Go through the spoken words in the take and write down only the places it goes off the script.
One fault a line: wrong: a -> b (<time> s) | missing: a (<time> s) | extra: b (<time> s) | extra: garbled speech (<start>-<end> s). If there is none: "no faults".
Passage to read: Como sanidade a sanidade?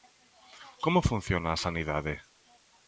wrong: sanidade -> funciona (1.1 s)